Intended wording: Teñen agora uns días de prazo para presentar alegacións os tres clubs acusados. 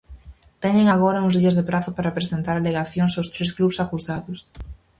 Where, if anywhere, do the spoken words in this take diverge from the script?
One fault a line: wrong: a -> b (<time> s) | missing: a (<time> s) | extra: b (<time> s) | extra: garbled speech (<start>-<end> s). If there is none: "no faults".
no faults